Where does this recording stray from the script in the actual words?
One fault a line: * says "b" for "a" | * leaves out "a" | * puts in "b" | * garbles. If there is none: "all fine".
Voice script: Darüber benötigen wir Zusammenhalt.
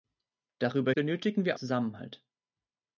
all fine